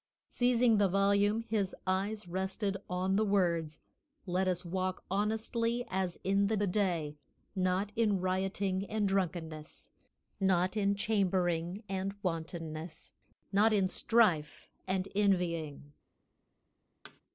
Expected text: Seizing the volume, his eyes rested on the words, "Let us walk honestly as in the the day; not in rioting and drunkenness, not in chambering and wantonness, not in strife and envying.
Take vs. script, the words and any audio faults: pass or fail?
fail